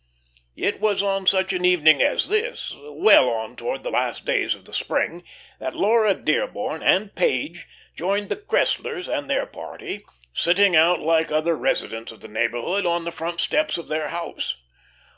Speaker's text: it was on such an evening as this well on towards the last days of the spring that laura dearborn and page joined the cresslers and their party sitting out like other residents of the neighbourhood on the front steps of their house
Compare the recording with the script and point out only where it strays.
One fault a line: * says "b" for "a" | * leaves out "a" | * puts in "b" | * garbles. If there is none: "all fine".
all fine